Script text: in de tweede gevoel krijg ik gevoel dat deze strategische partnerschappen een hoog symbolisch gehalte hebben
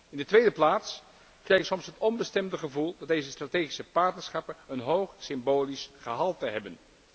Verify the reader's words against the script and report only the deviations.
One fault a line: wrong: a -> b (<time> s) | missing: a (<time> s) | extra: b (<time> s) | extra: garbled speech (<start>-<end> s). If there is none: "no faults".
wrong: gevoel -> plaats (0.5 s)
extra: soms het onbestemde (1.6 s)